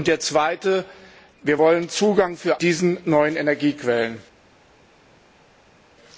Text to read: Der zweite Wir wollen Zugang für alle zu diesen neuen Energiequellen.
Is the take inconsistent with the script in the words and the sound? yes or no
yes